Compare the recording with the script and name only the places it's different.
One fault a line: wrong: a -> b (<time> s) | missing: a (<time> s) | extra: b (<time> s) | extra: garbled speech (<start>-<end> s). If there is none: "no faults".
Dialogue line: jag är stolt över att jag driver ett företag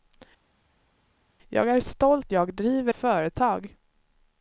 missing: över att (2.3 s)
missing: ett (2.9 s)